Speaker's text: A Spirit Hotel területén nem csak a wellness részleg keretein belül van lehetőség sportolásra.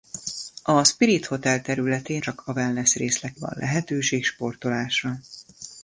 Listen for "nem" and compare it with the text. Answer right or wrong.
wrong